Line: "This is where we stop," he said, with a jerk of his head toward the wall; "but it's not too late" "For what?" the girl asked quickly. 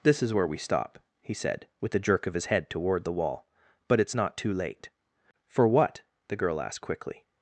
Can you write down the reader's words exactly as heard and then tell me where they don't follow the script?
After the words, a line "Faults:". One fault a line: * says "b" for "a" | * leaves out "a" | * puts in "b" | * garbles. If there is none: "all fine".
"This is where we stop," he said, with a jerk of his head toward the wall; "but it's not too late" "For what?" the girl asked quickly.
Faults:
all fine